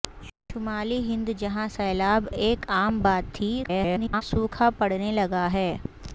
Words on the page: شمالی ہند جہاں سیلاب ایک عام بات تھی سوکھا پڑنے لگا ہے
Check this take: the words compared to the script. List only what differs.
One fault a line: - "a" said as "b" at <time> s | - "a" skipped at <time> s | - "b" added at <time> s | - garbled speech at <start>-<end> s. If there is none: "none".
- garbled speech at 3.6-4.2 s